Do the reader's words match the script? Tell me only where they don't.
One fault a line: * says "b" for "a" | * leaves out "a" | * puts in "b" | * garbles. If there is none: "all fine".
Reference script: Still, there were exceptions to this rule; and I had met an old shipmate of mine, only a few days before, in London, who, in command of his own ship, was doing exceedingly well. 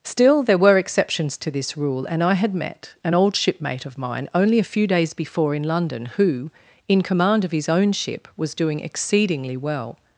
all fine